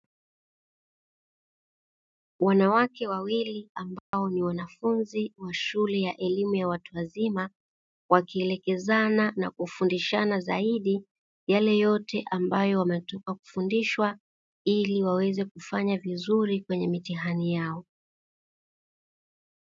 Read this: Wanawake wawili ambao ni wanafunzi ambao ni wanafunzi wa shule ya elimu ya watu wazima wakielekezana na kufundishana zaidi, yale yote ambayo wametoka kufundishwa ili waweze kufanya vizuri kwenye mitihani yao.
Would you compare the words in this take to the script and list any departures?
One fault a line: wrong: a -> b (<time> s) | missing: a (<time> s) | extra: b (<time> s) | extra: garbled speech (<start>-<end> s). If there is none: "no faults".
missing: ambao ni wanafunzi (5.3 s)